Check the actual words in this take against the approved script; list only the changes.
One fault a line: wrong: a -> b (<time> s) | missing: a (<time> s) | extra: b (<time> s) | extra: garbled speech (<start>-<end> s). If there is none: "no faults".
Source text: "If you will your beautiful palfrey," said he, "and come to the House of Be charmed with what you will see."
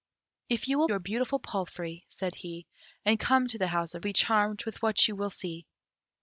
no faults